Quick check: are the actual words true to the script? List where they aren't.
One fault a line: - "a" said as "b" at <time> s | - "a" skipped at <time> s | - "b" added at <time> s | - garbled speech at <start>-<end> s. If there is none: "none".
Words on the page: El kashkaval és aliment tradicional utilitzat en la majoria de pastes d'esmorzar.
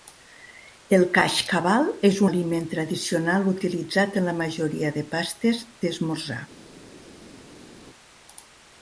none